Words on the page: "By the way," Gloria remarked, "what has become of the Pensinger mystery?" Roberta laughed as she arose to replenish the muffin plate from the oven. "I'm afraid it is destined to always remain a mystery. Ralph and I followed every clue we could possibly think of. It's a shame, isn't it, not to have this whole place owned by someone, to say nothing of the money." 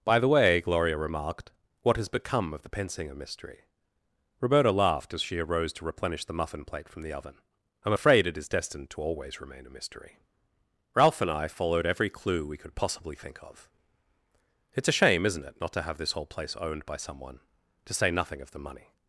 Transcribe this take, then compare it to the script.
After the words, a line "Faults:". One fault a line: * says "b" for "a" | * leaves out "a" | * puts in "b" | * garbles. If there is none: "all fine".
"By the way," Gloria remarked, "what has become of the Pensinger mystery?" Roberta laughed as she arose to replenish the muffin plate from the oven. "I'm afraid it is destined to always remain a mystery. Ralph and I followed every clue we could possibly think of. It's a shame, isn't it, not to have this whole place owned by someone, to say nothing of the money."
Faults:
all fine